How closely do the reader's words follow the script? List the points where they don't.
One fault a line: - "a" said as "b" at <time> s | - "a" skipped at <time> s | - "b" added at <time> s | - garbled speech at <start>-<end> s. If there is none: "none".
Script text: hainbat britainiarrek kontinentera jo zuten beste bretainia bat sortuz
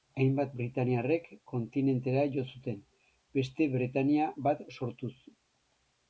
none